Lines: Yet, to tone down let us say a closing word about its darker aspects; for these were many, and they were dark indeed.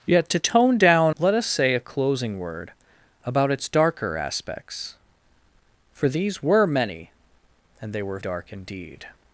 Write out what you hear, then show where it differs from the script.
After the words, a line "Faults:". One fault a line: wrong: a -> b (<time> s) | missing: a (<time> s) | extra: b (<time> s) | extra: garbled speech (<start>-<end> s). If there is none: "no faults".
Yet, to tone down let us say a closing word about its darker aspects; for these were many, and they were dark indeed.
Faults:
no faults